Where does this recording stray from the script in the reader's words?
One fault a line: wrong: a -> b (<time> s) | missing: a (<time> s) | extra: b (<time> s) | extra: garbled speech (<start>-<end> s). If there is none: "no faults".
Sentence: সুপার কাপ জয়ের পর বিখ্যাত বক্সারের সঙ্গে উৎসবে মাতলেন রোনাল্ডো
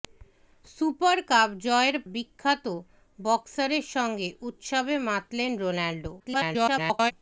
missing: পর (2.0 s)
extra: garbled speech (6.2-7.1 s)